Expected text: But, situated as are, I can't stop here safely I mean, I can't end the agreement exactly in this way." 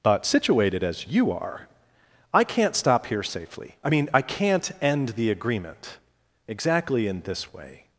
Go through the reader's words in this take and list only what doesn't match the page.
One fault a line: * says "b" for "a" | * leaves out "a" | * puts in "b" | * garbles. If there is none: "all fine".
* puts in "you"